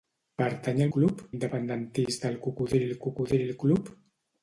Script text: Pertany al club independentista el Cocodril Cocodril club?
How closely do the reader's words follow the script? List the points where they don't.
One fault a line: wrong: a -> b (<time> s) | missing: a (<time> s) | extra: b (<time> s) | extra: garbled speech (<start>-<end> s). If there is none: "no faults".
no faults